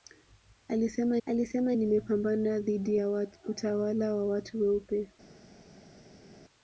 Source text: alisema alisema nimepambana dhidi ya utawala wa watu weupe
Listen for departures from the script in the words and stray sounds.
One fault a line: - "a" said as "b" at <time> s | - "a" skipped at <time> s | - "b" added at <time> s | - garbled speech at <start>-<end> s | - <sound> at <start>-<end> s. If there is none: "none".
none